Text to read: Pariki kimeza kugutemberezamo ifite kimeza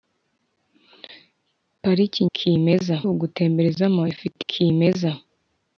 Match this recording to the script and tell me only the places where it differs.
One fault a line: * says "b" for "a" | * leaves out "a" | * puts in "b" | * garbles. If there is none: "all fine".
all fine